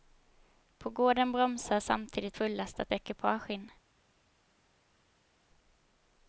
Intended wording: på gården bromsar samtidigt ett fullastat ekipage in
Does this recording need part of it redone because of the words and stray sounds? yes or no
yes